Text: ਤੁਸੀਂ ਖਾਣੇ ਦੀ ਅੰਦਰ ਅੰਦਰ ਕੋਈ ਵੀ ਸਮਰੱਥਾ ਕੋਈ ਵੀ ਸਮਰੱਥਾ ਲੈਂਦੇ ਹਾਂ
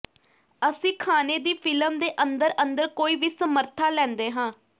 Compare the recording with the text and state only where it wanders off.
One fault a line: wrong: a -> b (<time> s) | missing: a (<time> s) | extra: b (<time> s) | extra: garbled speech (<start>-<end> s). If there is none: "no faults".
wrong: ਤੁਸੀਂ -> ਅਸੀਂ (0.6 s)
extra: ਫਿਲਮ ਦੇ (1.6 s)
missing: ਕੋਈ ਵੀ ਸਮਰੱਥਾ (3.9 s)